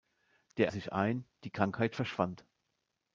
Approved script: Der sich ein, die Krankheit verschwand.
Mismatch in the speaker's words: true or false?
false